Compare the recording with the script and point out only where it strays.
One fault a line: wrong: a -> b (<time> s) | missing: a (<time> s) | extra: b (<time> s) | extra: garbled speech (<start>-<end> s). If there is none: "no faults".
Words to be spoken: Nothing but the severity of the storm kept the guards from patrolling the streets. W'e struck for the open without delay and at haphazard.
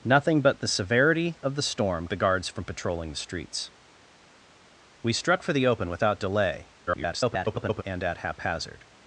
missing: kept (2.1 s)
extra: garbled speech (6.9-7.8 s)